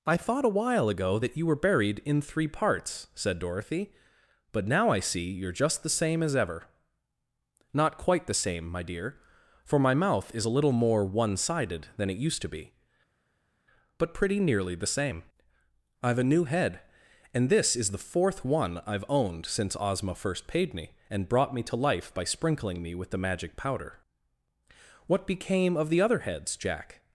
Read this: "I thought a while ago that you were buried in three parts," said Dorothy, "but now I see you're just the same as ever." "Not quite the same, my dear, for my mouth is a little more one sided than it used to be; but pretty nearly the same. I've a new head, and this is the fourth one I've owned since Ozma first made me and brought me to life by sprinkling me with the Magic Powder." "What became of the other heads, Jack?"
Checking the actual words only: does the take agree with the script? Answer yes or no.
no